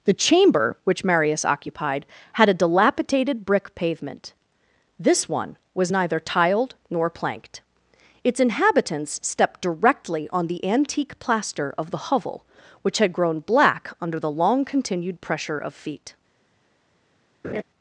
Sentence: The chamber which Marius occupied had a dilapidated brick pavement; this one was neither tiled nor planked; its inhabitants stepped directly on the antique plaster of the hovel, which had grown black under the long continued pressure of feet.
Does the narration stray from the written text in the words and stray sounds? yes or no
yes